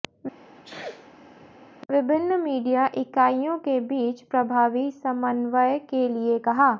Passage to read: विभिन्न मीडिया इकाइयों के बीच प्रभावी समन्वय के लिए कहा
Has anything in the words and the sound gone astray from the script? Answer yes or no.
yes